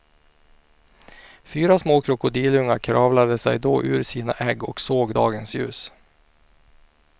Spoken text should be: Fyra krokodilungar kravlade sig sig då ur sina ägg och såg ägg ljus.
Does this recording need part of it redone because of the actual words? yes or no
yes